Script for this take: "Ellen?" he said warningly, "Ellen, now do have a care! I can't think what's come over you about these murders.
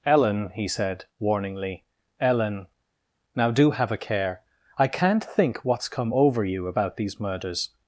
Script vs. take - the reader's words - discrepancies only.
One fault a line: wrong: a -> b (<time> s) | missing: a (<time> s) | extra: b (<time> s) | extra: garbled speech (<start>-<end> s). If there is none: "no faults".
no faults